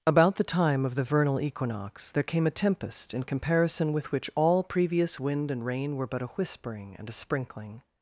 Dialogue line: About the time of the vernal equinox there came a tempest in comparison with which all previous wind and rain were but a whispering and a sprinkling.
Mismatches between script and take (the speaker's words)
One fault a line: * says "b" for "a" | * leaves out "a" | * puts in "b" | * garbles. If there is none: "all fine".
all fine